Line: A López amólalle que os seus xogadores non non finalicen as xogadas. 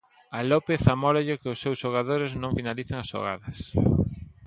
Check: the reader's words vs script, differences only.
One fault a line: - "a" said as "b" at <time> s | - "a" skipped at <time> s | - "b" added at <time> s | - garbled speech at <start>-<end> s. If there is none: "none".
- "non" skipped at 2.6 s